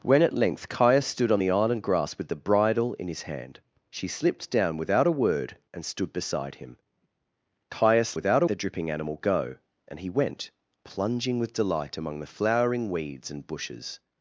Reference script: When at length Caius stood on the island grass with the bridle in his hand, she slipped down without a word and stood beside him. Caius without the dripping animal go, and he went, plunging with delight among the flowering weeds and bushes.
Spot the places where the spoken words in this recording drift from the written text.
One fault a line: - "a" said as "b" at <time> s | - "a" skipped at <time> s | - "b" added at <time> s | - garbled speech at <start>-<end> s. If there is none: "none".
none